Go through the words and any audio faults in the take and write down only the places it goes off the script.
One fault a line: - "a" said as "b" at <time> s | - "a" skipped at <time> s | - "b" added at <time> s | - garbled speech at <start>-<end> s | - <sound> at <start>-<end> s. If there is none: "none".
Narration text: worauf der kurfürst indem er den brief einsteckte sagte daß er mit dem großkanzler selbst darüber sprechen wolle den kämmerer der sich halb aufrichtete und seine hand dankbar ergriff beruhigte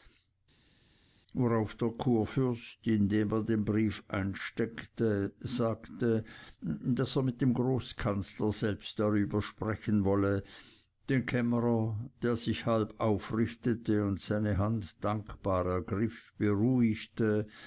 none